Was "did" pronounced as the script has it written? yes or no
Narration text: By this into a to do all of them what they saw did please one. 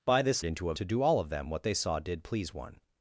yes